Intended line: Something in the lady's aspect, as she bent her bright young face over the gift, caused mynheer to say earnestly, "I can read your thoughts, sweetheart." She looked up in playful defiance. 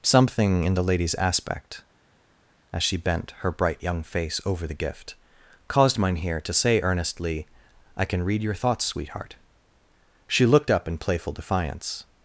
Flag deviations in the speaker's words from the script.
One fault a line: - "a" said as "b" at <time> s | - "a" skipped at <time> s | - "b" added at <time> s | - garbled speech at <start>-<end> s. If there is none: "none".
none